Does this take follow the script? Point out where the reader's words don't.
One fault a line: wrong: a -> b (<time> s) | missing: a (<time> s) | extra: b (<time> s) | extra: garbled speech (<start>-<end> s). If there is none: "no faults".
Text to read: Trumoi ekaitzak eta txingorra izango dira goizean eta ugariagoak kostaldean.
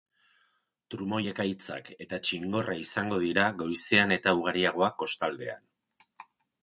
no faults